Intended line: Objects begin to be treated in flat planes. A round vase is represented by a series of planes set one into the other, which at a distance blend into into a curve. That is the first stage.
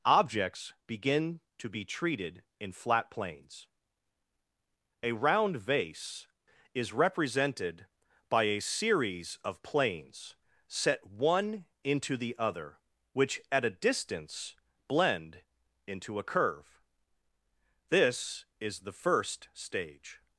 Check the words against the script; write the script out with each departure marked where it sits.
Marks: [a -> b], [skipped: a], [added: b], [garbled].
Objects begin to be treated in flat planes. A round vase is represented by a series of planes set one into the other, which at a distance blend into [skipped: into] a curve. [That -> This] is the first stage.